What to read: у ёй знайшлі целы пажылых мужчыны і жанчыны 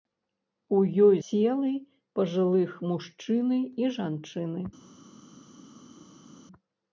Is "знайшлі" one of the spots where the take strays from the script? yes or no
yes